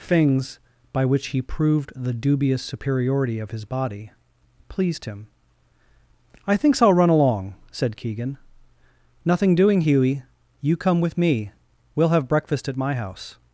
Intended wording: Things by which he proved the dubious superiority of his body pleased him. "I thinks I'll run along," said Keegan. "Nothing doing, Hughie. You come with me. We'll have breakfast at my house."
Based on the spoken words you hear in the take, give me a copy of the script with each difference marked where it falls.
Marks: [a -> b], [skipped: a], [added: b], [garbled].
Things by which he proved the dubious superiority of his body pleased him. "I thinks I'll run along," said Keegan. "Nothing doing, Hughie. You come with me. We'll have breakfast at my house."